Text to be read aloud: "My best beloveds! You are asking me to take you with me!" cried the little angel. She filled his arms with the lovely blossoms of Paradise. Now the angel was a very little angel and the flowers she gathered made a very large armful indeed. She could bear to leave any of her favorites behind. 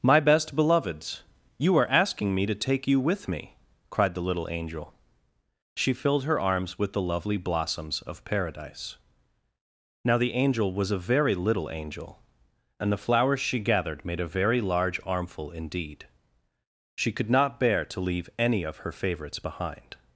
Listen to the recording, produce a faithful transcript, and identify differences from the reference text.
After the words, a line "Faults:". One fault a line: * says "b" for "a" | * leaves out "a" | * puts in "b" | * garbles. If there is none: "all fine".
"My best beloveds! You are asking me to take you with me!" cried the little angel. She filled her arms with the lovely blossoms of Paradise. Now the angel was a very little angel and the flowers she gathered made a very large armful indeed. She could not bear to leave any of her favorites behind.
Faults:
* says "her" for "his"
* puts in "not"